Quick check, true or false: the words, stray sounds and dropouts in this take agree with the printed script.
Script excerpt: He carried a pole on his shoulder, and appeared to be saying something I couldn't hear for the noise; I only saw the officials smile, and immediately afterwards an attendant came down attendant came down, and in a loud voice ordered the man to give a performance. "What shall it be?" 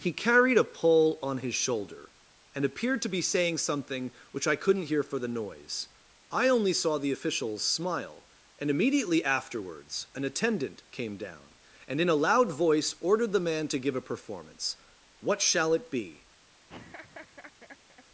false